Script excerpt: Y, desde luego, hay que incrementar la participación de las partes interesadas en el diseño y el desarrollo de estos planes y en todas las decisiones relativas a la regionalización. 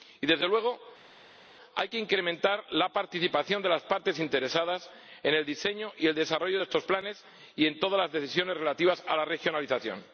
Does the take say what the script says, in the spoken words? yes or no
yes